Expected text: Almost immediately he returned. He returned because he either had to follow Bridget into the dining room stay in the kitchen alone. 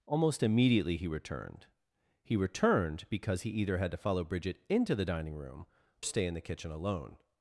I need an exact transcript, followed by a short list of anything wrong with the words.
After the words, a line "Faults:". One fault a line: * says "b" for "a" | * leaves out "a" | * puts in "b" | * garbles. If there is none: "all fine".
Almost immediately he returned. He returned because he either had to follow Bridget into the dining room stay in the kitchen alone.
Faults:
all fine